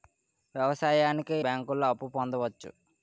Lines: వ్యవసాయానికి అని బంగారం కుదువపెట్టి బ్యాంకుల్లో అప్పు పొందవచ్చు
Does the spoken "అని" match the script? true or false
false